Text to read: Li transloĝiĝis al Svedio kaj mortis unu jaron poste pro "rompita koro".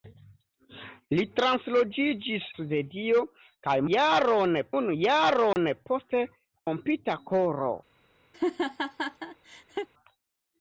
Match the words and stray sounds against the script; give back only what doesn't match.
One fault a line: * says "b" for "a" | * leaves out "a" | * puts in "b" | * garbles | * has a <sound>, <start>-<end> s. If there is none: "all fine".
* leaves out "al"
* says "jaron" for "mortis"
* has a dropout, 5.5-5.6 s
* leaves out "pro"
* has a laugh, 8.3-9.9 s